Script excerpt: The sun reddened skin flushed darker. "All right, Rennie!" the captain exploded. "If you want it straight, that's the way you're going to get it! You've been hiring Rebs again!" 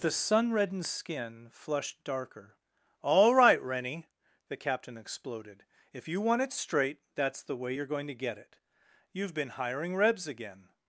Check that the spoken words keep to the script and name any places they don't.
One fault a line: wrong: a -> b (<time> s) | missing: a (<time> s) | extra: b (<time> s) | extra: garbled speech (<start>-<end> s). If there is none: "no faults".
no faults